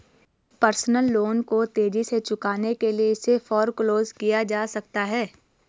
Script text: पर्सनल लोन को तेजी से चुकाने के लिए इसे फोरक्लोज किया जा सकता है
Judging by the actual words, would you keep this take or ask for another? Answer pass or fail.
pass